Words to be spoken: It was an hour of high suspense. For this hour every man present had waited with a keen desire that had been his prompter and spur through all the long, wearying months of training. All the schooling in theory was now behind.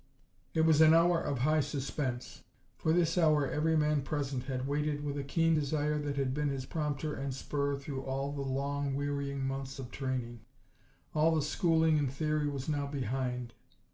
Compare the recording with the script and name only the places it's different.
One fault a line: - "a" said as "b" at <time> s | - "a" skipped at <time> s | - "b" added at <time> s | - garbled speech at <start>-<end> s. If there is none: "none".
none